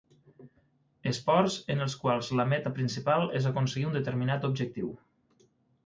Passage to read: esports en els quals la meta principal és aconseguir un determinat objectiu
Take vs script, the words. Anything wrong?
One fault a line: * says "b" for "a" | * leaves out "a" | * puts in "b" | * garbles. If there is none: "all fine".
all fine